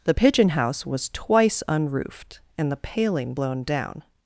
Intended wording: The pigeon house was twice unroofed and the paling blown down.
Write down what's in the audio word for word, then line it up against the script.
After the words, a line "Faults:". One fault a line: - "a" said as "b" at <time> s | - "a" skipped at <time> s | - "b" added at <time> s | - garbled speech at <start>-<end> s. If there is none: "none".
The pigeon house was twice unroofed and the paling blown down.
Faults:
none